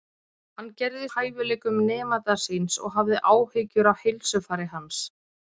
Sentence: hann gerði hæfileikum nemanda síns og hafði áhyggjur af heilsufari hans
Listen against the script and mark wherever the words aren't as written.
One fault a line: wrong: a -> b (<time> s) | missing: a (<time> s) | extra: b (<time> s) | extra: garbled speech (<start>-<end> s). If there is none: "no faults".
no faults